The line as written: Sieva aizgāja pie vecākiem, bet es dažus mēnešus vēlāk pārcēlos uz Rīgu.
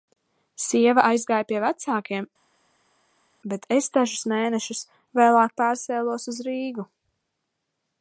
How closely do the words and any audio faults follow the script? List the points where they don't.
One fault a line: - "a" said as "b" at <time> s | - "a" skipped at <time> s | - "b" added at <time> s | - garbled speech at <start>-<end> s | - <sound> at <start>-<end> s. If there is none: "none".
none